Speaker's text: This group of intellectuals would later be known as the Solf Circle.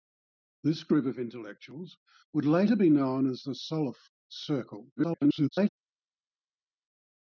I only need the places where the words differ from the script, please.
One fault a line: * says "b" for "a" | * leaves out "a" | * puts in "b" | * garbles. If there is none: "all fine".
* garbles